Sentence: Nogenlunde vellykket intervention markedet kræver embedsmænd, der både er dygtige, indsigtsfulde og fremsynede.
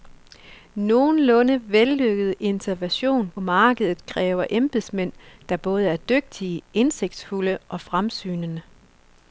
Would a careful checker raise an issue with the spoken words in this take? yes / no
no